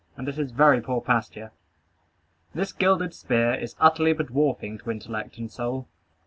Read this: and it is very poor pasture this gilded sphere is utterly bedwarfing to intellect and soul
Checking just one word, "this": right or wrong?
right